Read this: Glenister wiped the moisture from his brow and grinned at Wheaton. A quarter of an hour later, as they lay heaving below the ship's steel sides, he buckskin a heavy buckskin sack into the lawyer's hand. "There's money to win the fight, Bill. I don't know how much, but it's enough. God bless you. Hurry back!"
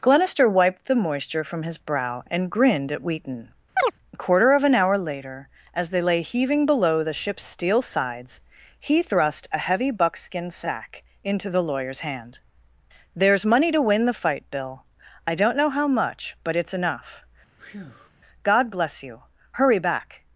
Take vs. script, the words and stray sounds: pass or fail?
fail